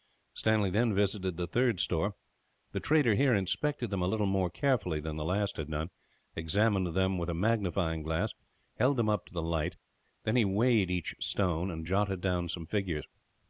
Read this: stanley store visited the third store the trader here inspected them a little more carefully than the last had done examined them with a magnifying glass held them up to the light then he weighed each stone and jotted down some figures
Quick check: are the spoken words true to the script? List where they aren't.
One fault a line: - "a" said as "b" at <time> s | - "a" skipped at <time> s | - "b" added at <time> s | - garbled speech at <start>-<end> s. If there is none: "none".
- "store" said as "then" at 0.7 s